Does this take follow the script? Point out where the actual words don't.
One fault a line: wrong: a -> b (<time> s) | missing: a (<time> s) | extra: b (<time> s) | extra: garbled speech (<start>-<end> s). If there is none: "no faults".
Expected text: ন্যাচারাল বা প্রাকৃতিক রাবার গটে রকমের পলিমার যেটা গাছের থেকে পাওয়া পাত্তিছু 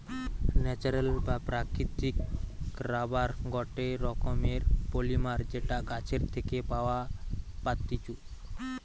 no faults